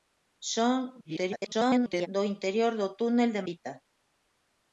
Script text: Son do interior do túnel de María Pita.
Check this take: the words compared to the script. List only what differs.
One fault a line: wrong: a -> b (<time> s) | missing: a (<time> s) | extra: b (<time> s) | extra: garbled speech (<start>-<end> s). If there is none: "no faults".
extra: garbled speech (1.0-2.1 s)
missing: María (3.4 s)